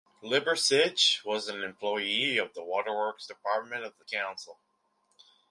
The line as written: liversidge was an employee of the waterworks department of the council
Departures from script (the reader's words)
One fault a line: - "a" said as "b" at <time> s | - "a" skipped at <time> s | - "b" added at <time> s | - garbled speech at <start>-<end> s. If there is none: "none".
none